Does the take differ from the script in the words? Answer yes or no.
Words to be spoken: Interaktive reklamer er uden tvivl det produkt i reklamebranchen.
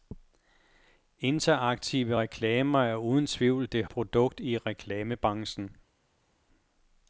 no